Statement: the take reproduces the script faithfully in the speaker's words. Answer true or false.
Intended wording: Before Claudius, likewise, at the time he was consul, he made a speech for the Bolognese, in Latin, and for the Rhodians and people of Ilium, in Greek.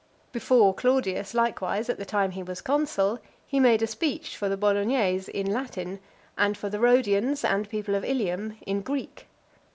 true